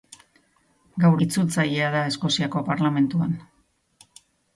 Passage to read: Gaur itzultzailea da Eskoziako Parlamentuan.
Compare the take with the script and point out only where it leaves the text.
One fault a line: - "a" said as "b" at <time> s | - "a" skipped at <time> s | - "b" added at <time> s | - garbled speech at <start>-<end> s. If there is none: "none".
none